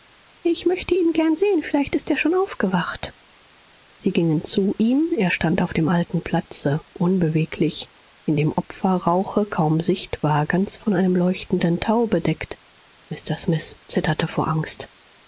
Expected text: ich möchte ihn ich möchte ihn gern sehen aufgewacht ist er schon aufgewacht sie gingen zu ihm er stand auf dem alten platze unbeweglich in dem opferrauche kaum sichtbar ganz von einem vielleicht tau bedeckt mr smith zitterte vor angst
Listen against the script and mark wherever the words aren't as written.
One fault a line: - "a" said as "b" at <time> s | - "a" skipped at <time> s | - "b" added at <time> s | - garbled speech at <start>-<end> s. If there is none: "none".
- "ich möchte ihn" skipped at 1.1 s
- "aufgewacht" said as "vielleicht" at 1.6 s
- "vielleicht" said as "leuchtenden" at 11.2 s